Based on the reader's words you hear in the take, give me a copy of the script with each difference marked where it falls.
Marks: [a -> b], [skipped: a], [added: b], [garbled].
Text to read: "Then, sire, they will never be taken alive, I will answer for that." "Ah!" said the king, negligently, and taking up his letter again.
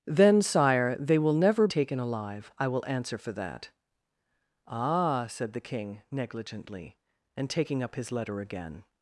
"Then, sire, they will never [skipped: be] taken alive, I will answer for that." "Ah!" said the king, negligently, and taking up his letter again.